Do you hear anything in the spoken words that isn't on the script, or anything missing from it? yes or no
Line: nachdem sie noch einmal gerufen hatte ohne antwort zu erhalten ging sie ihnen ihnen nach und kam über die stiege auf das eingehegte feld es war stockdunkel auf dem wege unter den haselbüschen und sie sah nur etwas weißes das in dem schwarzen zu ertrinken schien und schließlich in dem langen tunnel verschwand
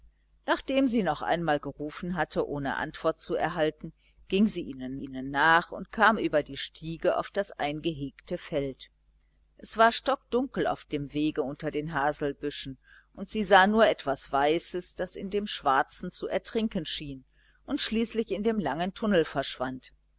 no